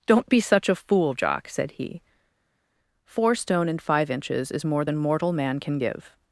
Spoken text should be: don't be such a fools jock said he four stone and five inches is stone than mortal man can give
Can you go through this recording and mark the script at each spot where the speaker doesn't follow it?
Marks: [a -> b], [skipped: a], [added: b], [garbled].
don't be such a [fools -> fool] jock said he four stone and five inches is [stone -> more] than mortal man can give